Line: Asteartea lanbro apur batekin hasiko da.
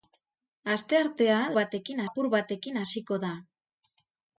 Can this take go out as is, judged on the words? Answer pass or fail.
fail